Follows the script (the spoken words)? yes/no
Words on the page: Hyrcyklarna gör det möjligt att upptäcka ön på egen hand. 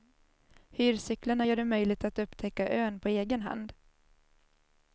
yes